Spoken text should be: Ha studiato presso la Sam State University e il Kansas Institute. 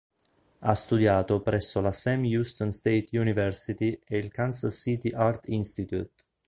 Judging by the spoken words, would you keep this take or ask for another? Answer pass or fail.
fail